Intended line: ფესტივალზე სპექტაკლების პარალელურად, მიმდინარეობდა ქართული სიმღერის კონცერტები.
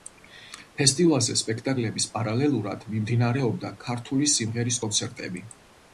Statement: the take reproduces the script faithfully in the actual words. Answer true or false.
true